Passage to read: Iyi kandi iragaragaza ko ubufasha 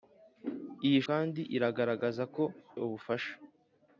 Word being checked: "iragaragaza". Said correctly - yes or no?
yes